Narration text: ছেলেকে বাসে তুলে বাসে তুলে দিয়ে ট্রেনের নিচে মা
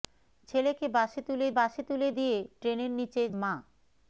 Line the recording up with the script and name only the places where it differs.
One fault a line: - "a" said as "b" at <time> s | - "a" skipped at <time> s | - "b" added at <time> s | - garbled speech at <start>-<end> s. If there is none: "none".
none